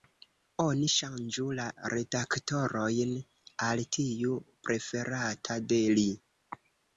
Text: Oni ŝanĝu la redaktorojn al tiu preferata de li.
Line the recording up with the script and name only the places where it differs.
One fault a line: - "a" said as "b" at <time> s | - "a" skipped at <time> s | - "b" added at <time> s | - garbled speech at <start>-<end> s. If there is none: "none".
none